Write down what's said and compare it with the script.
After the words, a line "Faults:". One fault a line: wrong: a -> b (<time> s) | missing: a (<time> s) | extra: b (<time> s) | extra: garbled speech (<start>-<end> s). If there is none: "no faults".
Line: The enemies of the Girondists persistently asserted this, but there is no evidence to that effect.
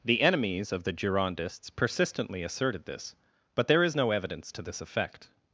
The enemies of the Girondists persistently asserted this, but there is no evidence to this effect.
Faults:
wrong: that -> this (4.6 s)